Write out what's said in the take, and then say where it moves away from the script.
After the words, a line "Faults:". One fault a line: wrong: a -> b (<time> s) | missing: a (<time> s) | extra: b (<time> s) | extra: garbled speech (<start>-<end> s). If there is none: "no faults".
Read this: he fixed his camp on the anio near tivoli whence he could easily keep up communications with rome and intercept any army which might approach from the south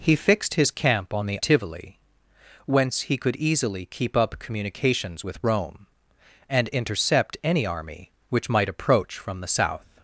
he fixed his camp on the tivoli whence he could easily keep up communications with rome and intercept any army which might approach from the south
Faults:
missing: anio near (1.4 s)